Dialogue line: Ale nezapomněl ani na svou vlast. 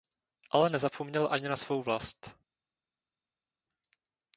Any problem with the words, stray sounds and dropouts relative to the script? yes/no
no